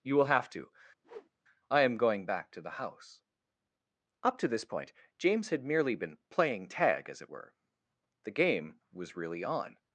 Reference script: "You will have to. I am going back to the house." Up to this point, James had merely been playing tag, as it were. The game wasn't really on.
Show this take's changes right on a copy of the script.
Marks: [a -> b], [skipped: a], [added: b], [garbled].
"You will have to. I am going back to the house." Up to this point, James had merely been playing tag, as it were. The game [wasn't -> was] really on.